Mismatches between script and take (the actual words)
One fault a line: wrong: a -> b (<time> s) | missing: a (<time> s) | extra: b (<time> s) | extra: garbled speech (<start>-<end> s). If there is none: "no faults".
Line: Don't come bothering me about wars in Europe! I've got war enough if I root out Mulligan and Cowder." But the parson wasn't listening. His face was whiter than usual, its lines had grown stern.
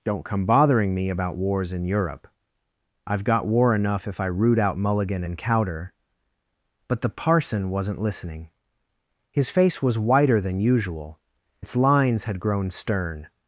no faults